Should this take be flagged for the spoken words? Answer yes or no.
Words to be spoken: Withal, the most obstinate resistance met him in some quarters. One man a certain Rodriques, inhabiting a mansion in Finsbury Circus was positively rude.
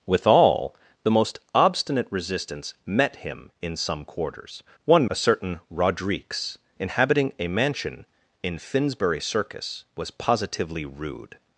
yes